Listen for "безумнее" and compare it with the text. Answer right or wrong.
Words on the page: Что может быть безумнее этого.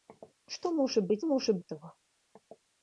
wrong